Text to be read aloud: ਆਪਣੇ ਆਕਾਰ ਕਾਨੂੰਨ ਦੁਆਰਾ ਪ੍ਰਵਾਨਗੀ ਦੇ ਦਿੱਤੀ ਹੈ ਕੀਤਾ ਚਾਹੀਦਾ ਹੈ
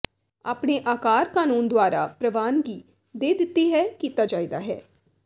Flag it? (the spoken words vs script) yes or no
no